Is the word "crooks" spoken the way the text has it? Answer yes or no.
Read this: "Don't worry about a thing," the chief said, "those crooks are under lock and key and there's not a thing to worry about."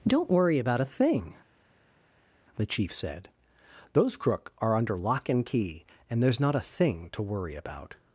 no